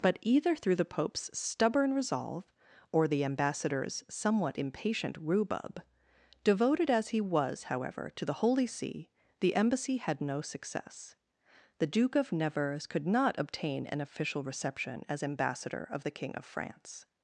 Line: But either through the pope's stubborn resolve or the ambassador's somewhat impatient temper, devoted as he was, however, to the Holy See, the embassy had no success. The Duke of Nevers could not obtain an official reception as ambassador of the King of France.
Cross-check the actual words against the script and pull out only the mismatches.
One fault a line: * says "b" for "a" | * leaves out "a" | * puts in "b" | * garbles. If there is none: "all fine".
* says "rhubub" for "temper"